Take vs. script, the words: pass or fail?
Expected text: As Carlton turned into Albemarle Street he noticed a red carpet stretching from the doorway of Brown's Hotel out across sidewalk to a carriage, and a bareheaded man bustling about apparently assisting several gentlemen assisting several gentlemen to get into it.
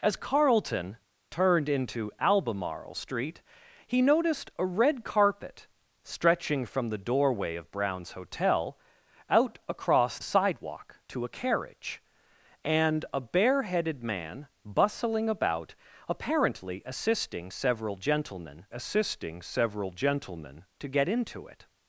pass